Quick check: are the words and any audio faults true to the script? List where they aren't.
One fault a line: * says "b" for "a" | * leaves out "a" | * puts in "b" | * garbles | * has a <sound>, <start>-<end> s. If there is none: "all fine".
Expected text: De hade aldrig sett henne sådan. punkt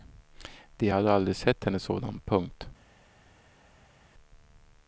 all fine